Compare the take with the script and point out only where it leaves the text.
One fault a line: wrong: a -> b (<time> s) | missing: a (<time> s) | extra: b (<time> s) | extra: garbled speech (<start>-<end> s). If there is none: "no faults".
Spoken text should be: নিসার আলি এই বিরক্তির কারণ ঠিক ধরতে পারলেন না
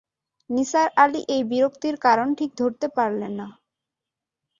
no faults